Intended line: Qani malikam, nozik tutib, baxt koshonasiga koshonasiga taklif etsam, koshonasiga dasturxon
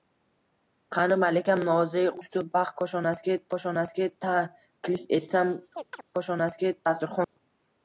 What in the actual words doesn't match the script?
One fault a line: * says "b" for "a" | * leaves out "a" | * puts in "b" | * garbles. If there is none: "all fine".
all fine